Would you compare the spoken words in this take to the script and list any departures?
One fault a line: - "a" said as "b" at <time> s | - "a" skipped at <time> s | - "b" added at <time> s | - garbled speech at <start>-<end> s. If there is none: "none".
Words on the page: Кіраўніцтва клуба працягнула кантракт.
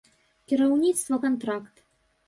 - "клуба працягнула" skipped at 1.2 s